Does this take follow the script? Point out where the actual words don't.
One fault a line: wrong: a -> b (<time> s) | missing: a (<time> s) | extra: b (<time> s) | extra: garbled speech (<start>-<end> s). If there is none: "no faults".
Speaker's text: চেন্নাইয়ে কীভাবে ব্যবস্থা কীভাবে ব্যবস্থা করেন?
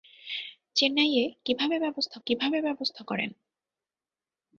no faults